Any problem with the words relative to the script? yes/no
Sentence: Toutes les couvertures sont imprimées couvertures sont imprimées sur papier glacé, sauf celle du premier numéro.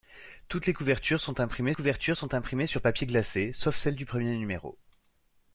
no